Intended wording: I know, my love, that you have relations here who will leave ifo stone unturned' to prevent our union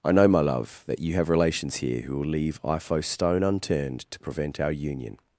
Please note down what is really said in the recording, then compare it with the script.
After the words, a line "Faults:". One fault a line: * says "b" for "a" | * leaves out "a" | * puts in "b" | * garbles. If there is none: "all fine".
I know, my love, that you have relations here who will leave ifo stone unturned' to prevent our union
Faults:
all fine